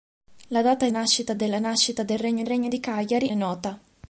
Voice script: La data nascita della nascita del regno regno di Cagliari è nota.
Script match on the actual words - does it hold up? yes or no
yes